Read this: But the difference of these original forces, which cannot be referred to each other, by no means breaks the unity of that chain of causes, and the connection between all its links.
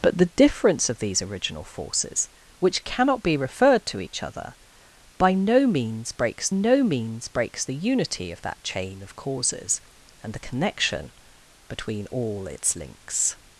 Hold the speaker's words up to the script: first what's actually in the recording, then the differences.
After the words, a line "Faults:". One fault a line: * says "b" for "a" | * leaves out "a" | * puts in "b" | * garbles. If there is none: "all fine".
But the difference of these original forces, which cannot be referred to each other, by no means breaks no means breaks the unity of that chain of causes, and the connection between all its links.
Faults:
* puts in "no means breaks"